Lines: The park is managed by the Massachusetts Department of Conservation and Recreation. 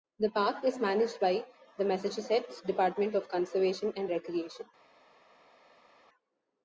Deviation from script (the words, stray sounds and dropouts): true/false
false